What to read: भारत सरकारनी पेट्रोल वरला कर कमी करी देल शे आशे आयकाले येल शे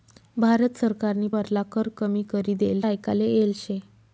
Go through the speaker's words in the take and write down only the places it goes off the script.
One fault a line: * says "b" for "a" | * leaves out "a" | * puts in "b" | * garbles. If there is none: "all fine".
* leaves out "पेट्रोल"
* leaves out "शे आशे"